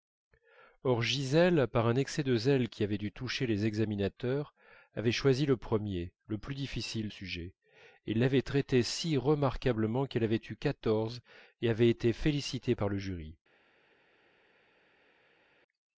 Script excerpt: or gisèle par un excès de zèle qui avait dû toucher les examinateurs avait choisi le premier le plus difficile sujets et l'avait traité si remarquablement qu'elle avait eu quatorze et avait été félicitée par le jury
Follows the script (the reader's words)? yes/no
yes